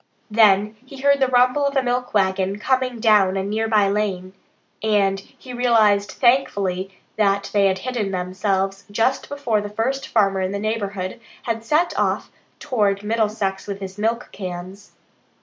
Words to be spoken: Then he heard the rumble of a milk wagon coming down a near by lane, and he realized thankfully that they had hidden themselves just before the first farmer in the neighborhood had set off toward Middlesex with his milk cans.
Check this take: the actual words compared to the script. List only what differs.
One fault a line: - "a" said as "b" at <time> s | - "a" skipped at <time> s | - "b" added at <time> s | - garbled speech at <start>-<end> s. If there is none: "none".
none